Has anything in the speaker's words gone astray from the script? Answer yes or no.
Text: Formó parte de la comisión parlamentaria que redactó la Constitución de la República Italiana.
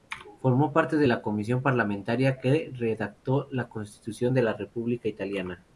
no